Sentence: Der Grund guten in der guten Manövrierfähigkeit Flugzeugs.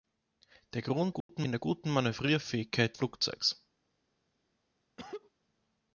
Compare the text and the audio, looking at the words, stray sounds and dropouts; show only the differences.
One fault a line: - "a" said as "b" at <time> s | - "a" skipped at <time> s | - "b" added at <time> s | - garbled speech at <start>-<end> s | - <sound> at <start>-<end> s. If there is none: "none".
- dropout at 1.2-1.3 s
- cough at 5.0-5.3 s